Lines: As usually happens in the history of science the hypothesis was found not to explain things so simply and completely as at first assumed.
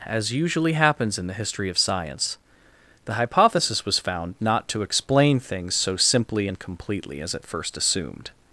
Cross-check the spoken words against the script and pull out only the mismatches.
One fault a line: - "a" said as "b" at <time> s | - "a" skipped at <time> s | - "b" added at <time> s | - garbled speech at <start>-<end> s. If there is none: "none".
none